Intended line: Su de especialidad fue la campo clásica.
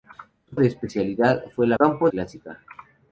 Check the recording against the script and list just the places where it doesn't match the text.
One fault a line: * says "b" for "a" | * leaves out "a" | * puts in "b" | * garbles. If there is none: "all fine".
all fine